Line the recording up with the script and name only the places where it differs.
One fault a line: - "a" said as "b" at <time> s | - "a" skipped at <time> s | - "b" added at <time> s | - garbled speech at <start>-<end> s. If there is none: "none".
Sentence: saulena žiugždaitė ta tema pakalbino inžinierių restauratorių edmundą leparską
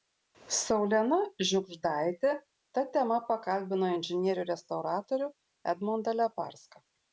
none